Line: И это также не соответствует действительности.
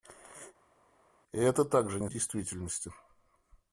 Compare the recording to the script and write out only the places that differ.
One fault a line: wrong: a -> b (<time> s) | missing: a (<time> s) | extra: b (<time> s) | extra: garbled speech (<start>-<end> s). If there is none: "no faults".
missing: соответствует (2.1 s)